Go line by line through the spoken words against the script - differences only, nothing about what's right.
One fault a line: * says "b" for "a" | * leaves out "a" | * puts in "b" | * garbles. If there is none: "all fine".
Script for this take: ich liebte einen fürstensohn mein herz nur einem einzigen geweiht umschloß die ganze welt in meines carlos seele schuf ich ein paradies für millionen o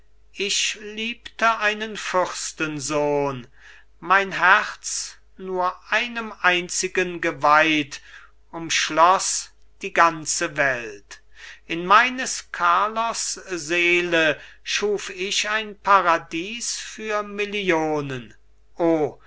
all fine